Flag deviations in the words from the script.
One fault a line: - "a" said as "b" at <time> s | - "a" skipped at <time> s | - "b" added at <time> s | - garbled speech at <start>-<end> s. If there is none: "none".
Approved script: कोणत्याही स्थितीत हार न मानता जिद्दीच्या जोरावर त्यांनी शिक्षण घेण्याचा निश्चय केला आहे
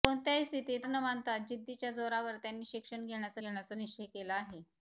- "हार" skipped at 0.8 s
- "घेण्याचा" added at 3.4 s